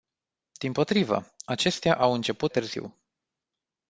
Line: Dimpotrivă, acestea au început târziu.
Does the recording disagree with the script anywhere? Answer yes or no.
no